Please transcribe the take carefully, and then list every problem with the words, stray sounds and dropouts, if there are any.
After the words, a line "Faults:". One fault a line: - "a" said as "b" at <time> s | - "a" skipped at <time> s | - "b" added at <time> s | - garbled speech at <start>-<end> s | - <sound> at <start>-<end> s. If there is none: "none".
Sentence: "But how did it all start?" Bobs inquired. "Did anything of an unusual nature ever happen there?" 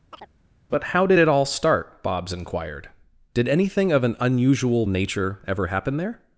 "But how did it all start?" Bobs inquired. "Did anything of an unusual nature ever happen there?"
Faults:
- chirp at 0.1-0.3 s